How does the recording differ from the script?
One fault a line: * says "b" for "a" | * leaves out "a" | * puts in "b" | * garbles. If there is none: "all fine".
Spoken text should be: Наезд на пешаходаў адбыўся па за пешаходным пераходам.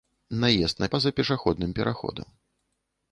* leaves out "пешаходаў адбыўся"